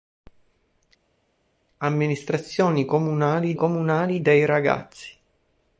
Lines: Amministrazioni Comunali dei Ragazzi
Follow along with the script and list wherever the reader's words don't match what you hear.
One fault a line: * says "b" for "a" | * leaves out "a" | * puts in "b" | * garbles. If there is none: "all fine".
* puts in "Comunali"